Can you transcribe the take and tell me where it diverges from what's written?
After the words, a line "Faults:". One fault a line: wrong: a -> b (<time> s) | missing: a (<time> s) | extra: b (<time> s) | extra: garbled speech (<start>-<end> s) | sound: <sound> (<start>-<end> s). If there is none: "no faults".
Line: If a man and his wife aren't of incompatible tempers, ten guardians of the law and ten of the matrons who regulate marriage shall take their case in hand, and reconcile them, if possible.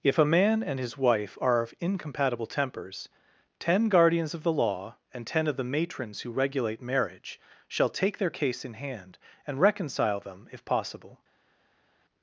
If a man and his wife are of incompatible tempers, ten guardians of the law and ten of the matrons who regulate marriage shall take their case in hand, and reconcile them, if possible.
Faults:
wrong: aren't -> are (1.4 s)